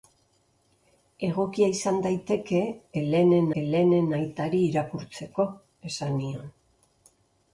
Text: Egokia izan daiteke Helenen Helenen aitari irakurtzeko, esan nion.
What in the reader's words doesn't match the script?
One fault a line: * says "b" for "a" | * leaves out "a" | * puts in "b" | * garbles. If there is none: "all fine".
all fine